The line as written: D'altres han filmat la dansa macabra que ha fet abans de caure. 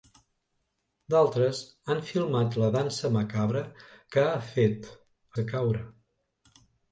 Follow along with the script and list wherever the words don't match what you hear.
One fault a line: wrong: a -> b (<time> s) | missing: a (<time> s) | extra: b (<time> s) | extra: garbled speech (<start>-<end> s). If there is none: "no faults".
missing: abans (4.9 s)